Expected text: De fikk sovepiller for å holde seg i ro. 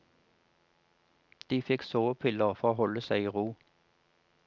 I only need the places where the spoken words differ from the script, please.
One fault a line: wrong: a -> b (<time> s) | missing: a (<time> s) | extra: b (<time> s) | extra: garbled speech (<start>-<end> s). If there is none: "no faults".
no faults